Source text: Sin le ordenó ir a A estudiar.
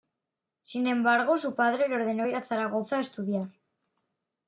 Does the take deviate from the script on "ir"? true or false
false